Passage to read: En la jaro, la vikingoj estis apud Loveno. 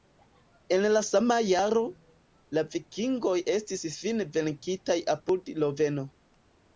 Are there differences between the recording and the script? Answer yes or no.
yes